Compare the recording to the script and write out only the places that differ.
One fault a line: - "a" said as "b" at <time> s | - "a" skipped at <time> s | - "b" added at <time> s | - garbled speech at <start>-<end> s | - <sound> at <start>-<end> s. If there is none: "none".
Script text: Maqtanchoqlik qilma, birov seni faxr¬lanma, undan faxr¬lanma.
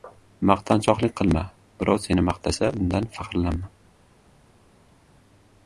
- "faxr¬lanma" said as "maqtasa" at 2.3 s